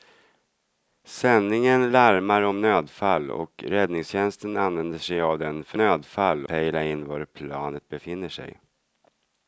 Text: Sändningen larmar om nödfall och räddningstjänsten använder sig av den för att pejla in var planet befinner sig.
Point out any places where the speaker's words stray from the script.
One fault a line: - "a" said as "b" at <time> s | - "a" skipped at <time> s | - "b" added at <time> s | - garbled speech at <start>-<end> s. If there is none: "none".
- "att" said as "nödfall" at 5.8 s